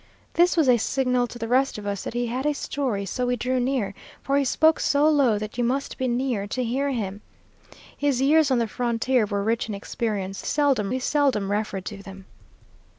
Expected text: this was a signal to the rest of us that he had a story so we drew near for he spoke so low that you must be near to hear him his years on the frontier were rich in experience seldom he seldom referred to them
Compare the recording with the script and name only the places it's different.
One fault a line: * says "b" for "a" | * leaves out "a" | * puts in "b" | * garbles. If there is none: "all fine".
all fine